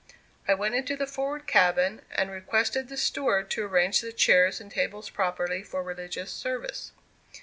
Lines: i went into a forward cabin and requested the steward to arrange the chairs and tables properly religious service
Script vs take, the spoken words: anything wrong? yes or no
yes